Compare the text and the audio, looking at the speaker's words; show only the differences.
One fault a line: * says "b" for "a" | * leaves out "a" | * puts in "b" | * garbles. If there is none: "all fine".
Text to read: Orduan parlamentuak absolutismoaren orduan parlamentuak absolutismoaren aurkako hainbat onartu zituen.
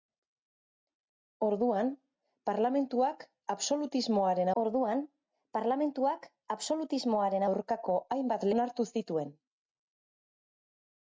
all fine